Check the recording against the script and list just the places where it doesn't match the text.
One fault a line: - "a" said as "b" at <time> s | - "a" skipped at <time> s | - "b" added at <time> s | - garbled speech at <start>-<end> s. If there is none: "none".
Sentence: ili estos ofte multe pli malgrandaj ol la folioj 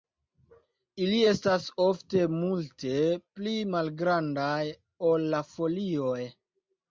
- "estos" said as "estas" at 1.3 s